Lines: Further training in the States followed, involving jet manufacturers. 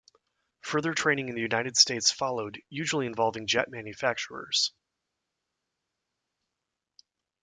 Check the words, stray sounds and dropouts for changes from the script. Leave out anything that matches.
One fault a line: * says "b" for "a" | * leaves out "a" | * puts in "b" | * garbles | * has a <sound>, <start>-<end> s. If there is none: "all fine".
* puts in "United"
* puts in "usually"